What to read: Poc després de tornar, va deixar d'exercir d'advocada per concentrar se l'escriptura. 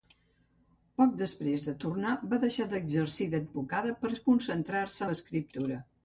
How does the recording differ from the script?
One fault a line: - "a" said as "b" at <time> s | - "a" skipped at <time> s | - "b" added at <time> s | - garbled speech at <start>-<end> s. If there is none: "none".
none